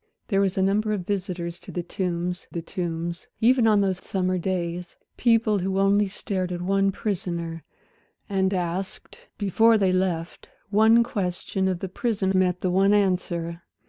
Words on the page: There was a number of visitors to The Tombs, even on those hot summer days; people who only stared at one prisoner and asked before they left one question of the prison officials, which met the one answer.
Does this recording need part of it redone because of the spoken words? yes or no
yes